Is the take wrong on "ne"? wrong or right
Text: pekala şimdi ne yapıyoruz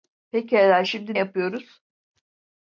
wrong